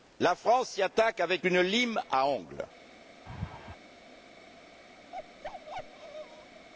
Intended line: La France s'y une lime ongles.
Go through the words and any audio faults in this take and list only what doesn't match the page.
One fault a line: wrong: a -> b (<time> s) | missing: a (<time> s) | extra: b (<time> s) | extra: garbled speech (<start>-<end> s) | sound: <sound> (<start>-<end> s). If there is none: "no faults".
extra: attaque avec (0.8 s)
extra: à (2.1 s)
sound: laugh (3.3-3.8 s)
sound: bark (5.1-6.7 s)